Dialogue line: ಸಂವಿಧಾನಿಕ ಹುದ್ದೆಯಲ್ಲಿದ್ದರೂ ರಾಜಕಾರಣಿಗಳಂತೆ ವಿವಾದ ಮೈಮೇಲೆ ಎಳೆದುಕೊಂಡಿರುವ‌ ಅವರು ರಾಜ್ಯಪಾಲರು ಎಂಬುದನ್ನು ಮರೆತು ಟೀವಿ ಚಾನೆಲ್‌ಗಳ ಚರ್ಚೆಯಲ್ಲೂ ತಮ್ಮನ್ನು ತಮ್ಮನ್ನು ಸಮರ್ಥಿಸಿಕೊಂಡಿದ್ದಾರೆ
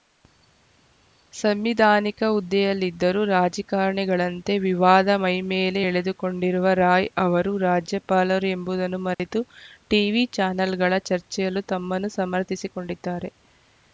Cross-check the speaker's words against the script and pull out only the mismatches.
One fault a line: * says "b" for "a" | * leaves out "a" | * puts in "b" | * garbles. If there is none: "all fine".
* puts in "ರಾಯ್"
* leaves out "ತಮ್ಮನ್ನು"